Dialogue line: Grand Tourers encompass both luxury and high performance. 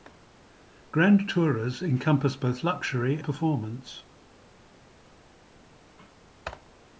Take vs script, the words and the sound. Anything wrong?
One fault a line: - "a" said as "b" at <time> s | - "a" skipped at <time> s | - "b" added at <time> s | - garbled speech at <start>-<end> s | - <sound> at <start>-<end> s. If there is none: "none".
- "and high" skipped at 3.2 s